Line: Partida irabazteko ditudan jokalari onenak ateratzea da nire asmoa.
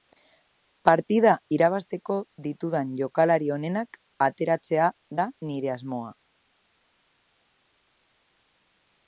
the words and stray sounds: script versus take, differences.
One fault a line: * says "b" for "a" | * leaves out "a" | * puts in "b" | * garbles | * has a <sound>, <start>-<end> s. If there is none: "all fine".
all fine